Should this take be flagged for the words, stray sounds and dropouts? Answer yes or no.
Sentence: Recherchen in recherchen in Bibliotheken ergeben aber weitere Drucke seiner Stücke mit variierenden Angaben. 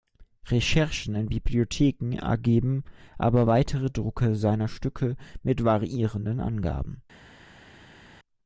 yes